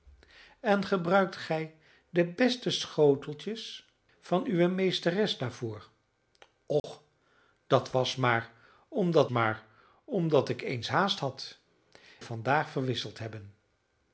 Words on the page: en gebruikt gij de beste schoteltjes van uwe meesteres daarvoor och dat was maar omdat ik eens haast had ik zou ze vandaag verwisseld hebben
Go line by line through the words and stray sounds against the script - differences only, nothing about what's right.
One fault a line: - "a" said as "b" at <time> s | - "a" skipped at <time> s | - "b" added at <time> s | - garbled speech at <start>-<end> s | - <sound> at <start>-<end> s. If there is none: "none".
- dropout at 6.8-6.8 s
- "maar omdat" added at 9.3 s
- "ik zou ze" skipped at 11.6 s